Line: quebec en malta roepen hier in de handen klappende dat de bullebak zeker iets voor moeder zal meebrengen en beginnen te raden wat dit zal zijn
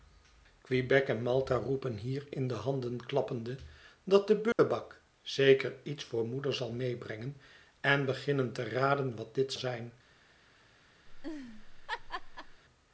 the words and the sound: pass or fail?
fail